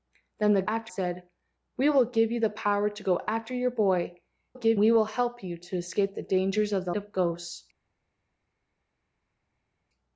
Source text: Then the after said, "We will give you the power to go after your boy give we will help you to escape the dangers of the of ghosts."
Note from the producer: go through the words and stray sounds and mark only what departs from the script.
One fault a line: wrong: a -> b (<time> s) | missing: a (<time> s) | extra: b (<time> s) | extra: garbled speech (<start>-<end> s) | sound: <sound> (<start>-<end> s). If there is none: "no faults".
no faults